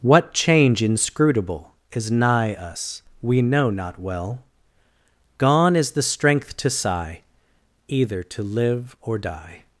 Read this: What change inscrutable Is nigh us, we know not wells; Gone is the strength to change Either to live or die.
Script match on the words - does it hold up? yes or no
no